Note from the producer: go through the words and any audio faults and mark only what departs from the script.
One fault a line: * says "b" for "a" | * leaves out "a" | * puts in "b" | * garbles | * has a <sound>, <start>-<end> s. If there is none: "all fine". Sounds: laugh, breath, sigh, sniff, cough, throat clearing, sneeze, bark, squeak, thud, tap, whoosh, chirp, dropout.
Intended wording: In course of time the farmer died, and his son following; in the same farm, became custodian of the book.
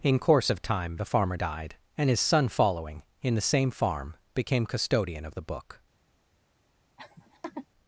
* has a laugh, 7.0-7.7 s